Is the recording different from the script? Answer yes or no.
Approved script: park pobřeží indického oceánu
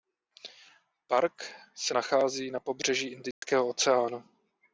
yes